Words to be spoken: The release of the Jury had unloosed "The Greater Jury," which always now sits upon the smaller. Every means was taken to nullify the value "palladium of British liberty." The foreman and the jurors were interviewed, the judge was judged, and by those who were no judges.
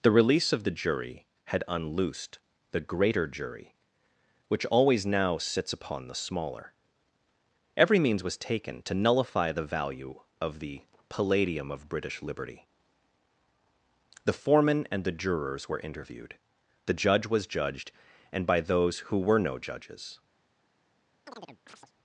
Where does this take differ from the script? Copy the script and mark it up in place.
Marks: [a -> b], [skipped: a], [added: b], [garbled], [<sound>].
The release of the Jury had unloosed "The Greater Jury," which always now sits upon the smaller. Every means was taken to nullify the value [added: of the] "palladium of British liberty." The foreman and the jurors were interviewed, the judge was judged, and by those who were no judges. [chirp]